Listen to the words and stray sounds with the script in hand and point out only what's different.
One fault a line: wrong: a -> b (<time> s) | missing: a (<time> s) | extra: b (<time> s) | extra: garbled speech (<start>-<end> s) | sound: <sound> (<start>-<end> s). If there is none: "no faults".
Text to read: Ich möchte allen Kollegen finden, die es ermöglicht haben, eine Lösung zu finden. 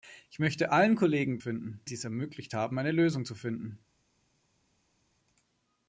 no faults